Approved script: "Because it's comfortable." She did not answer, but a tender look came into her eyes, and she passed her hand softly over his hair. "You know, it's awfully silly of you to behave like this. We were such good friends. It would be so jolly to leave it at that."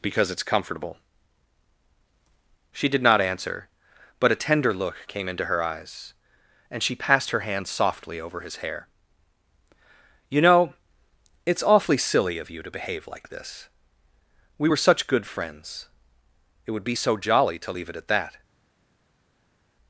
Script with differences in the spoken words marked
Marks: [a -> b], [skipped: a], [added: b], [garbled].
"Because it's comfortable." She did not answer, but a tender look came into her eyes, and she passed her hand softly over his hair. "You know, it's awfully silly of you to behave like this. We were such good friends. It would be so jolly to leave it at that."